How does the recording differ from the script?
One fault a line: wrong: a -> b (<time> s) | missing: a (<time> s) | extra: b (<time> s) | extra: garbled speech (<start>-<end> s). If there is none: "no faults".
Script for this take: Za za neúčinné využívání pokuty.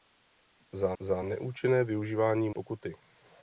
no faults